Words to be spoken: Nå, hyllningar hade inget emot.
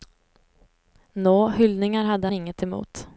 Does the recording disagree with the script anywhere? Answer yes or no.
no